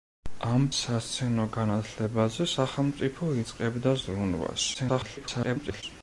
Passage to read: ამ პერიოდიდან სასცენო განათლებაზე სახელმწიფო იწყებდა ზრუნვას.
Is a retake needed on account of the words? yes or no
yes